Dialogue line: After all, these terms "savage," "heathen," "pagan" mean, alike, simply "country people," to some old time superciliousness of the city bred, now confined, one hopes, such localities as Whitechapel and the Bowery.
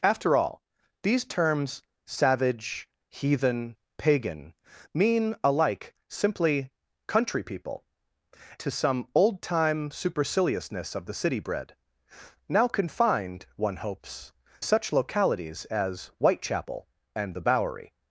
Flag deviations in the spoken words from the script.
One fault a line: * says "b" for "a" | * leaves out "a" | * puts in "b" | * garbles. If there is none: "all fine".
all fine